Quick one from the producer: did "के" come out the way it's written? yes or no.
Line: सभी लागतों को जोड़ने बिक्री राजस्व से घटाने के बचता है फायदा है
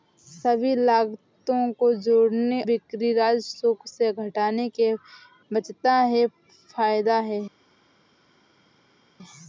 yes